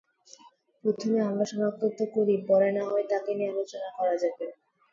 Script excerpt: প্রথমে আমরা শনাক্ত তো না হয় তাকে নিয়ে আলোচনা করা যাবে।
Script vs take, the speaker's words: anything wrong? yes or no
yes